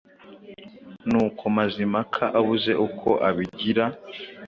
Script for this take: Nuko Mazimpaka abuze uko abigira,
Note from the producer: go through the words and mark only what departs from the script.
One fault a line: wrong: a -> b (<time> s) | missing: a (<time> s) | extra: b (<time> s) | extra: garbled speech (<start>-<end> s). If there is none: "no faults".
no faults